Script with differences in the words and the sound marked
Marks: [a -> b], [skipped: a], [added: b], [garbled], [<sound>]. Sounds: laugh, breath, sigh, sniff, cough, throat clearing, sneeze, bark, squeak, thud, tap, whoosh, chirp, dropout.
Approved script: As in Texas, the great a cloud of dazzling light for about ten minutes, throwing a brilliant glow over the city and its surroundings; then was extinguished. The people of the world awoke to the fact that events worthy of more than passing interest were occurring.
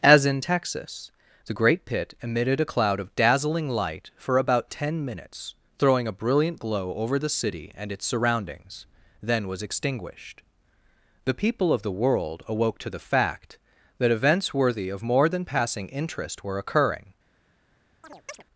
As in Texas, the great [added: pit emitted] a cloud of dazzling light for about ten minutes, throwing a brilliant glow over the city and its surroundings; then was extinguished. The people of the world awoke to the fact that events worthy of more than passing interest were occurring. [chirp]